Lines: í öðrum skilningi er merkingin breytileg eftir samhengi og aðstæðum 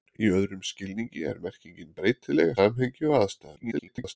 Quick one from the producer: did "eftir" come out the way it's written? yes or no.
no